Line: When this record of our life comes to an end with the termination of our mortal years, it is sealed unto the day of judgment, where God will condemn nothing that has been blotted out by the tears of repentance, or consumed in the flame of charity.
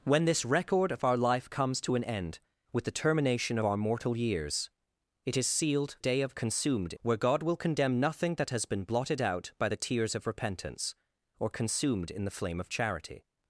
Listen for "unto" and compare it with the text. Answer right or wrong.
wrong